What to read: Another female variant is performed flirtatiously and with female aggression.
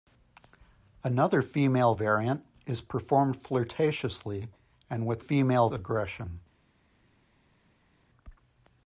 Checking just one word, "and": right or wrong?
right